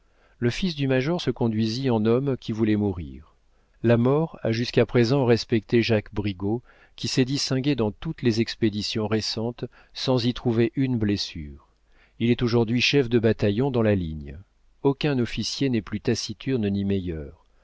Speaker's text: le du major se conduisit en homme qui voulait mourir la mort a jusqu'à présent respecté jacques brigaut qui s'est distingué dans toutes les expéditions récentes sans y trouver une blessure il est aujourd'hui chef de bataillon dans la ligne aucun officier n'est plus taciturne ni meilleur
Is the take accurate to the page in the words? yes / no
no